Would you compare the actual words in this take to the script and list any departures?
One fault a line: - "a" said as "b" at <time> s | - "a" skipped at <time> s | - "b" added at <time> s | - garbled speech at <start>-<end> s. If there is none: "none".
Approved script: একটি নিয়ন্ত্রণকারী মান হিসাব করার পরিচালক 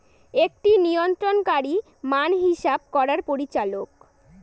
none